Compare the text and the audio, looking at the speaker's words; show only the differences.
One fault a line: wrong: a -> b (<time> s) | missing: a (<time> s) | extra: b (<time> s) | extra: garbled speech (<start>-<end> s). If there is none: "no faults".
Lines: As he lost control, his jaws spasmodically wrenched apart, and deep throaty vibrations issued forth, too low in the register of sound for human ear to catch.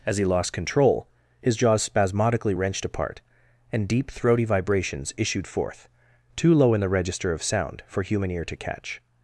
no faults